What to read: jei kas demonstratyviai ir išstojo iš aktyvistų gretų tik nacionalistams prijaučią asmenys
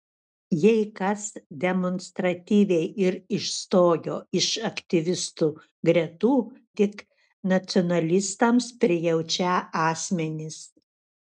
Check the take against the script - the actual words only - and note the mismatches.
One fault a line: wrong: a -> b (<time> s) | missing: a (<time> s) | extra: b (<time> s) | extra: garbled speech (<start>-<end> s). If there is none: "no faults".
no faults